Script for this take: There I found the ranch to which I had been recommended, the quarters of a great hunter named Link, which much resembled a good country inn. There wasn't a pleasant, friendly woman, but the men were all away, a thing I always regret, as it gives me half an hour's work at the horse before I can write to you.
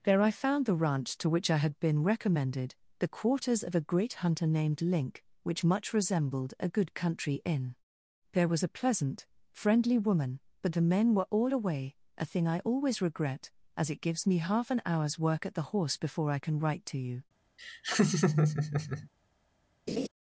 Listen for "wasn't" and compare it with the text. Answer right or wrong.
wrong